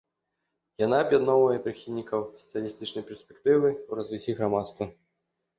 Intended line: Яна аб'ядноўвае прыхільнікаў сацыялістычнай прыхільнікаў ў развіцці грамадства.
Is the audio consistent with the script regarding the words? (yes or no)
no